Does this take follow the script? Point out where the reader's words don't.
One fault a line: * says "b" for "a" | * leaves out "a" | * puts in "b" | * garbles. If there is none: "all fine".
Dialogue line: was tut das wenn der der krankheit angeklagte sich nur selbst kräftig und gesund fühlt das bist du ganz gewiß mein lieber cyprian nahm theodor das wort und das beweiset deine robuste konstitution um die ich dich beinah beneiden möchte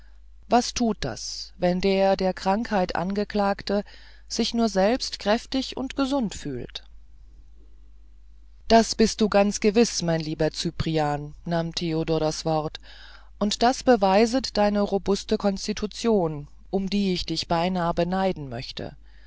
all fine